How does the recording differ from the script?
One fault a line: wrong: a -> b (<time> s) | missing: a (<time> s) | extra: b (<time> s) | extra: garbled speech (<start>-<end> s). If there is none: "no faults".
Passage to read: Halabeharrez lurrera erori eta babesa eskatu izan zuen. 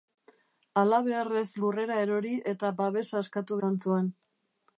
no faults